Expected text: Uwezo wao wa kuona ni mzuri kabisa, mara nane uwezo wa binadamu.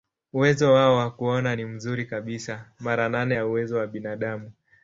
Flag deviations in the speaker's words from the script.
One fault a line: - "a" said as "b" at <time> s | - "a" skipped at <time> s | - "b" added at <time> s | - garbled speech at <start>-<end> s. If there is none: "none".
- "ya" added at 3.3 s